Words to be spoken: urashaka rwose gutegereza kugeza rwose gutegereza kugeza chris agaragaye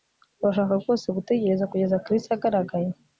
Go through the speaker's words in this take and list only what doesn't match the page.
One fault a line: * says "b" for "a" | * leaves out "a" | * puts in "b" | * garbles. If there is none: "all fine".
* leaves out "rwose gutegereza kugeza"